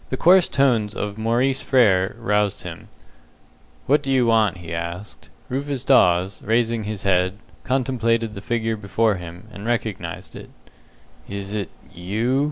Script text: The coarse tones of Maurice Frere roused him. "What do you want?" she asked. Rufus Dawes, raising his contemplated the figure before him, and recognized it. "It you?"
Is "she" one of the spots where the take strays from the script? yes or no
yes